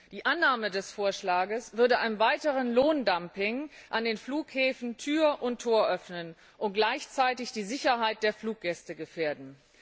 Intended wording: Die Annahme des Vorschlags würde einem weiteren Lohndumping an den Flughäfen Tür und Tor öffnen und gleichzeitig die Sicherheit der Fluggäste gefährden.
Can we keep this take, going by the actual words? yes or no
yes